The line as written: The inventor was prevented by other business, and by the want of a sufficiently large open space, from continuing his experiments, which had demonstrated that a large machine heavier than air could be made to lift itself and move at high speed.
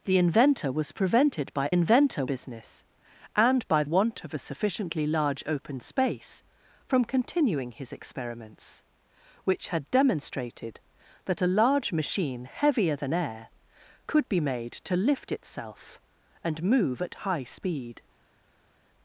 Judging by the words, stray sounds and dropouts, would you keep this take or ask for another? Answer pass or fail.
fail